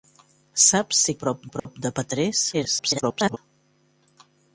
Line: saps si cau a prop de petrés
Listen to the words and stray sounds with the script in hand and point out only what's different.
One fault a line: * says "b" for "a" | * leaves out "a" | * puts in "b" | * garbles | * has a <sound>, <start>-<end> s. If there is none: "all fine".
* says "prop" for "cau"
* has a dropout, 1.6-1.7 s
* garbles